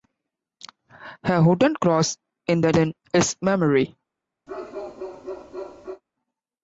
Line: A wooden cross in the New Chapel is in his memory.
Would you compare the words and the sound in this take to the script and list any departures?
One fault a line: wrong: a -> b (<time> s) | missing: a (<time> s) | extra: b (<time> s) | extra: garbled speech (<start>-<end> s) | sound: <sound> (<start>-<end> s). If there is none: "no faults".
missing: New Chapel is (2.7 s)
sound: bark (4.5-6.0 s)